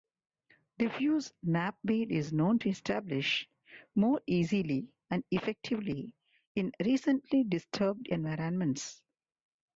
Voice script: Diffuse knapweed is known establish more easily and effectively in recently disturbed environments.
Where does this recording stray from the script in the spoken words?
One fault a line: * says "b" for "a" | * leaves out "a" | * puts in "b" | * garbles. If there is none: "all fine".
* puts in "to"